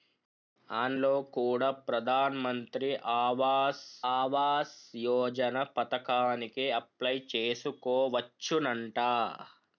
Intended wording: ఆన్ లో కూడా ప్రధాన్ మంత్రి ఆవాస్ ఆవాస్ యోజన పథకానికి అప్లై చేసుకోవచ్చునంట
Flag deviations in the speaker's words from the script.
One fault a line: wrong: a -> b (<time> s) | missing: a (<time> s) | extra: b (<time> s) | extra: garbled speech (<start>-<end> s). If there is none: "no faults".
no faults